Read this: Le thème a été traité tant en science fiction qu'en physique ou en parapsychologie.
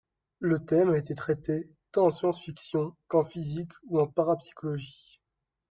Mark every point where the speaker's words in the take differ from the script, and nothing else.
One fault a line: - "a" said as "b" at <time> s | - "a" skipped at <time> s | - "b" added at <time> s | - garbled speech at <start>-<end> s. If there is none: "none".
none